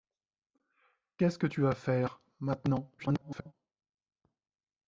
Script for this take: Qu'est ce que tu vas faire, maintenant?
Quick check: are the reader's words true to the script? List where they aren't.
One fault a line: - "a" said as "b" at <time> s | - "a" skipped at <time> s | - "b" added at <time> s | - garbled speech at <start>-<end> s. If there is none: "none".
- garbled speech at 3.0-3.5 s